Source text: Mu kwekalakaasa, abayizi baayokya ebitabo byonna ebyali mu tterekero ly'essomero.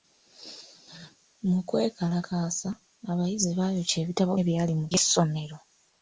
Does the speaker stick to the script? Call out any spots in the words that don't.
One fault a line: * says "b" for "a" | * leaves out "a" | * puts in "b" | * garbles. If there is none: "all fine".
* leaves out "byonna"
* leaves out "tterekero"